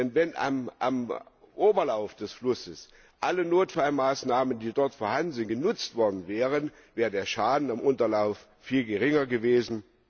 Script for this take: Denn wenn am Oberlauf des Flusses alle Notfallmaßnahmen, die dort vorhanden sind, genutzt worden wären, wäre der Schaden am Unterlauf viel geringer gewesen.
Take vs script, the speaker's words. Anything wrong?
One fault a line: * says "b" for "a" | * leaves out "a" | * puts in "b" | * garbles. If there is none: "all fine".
all fine